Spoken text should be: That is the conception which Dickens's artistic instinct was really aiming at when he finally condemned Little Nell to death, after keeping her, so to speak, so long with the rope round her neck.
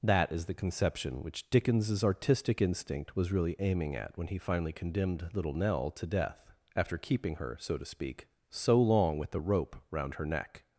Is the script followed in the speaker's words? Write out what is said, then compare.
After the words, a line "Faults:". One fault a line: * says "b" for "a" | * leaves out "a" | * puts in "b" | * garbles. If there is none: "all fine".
That is the conception which Dickens's artistic instinct was really aiming at when he finally condemned Little Nell to death, after keeping her, so to speak, so long with the rope round her neck.
Faults:
all fine